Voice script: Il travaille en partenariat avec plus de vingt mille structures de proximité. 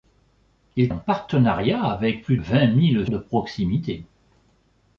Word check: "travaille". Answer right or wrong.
wrong